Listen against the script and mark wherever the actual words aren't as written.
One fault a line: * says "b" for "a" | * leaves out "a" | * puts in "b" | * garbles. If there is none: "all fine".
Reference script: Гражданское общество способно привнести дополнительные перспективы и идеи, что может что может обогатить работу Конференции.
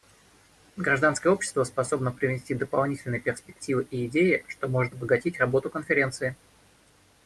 * leaves out "что может"